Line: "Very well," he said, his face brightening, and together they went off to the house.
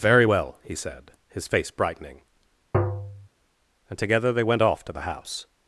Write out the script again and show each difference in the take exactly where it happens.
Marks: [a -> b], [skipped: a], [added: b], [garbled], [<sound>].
"Very well," he said, his face brightening, [tap] and together they went off to the house.